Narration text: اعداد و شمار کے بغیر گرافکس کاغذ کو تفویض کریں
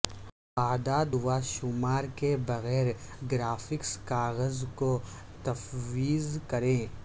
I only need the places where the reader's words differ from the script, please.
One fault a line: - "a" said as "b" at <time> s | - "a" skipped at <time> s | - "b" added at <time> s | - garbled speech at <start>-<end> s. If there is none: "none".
none